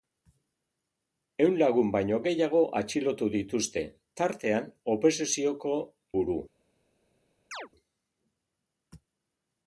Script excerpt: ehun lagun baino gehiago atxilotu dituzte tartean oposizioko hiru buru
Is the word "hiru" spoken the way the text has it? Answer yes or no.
no